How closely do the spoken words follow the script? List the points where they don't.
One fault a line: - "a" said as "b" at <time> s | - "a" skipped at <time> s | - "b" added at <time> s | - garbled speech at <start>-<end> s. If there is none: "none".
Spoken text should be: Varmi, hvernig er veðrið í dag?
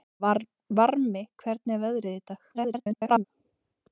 - garbled speech at 2.5-3.2 s